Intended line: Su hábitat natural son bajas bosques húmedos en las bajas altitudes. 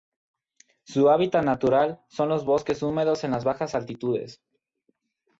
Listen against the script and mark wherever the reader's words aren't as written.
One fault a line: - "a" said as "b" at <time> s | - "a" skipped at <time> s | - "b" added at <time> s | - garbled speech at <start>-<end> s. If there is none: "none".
- "bajas" said as "los" at 2.3 s